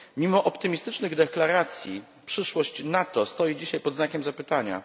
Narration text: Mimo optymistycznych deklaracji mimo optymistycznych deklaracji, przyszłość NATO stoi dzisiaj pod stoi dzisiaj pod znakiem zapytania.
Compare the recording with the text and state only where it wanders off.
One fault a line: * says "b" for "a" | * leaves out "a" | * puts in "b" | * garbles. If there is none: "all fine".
* leaves out "mimo optymistycznych deklaracji"
* leaves out "stoi dzisiaj pod"